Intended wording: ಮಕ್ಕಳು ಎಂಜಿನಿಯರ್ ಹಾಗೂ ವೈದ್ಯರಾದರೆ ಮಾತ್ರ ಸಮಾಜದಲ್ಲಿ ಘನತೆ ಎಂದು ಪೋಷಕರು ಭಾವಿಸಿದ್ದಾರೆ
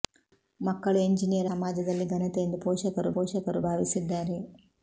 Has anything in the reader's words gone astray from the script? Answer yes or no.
yes